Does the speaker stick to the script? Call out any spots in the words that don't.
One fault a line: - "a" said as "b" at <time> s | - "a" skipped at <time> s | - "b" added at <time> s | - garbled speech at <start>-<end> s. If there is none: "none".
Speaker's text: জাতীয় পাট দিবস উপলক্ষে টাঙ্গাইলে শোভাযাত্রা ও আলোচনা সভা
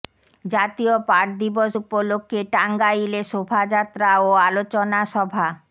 none